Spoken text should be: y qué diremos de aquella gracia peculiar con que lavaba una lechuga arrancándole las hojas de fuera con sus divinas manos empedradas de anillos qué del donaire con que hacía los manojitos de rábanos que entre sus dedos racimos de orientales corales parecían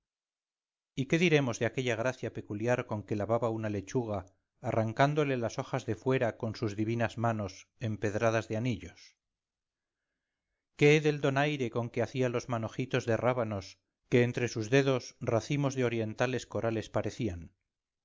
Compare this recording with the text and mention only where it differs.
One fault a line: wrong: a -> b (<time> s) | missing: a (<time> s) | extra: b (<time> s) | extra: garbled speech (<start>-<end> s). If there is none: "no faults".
no faults